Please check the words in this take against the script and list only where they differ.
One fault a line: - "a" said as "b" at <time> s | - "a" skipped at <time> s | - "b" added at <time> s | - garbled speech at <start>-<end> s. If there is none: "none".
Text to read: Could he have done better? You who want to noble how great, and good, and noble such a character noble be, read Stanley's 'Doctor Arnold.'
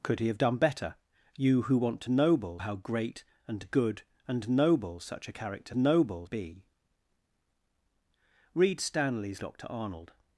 none